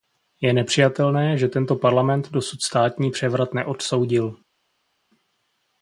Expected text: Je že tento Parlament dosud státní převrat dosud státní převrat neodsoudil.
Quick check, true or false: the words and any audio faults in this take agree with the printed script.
false